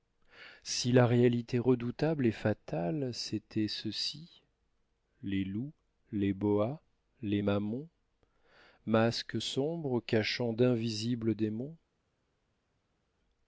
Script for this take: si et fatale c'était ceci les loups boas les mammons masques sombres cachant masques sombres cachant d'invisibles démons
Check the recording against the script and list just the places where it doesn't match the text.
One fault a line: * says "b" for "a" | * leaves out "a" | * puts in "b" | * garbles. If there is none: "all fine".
* puts in "la réalité redoutable"
* puts in "les"
* leaves out "masques sombres cachant"